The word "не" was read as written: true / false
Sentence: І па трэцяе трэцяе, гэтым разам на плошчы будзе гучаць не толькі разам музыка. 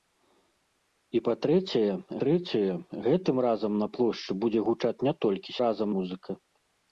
true